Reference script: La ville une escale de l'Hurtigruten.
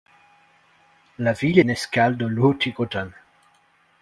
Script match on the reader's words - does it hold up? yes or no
yes